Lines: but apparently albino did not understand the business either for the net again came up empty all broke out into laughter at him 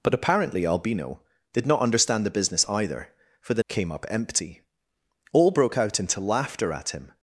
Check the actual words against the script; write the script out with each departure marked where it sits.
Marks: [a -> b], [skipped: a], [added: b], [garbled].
but apparently albino did not understand the business either for the [skipped: net again] came up empty all broke out into laughter at him